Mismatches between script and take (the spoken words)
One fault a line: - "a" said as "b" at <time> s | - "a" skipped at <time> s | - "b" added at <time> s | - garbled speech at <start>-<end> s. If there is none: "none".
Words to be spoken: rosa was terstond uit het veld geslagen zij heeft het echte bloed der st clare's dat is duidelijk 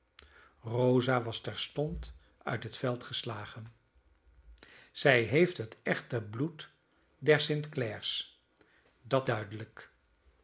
- "is" skipped at 9.3 s